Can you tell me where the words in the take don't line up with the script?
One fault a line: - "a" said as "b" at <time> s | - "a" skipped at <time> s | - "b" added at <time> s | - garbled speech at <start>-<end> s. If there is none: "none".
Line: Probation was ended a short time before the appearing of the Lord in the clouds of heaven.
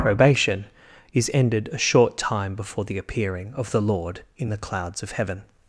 - "was" said as "is" at 1.1 s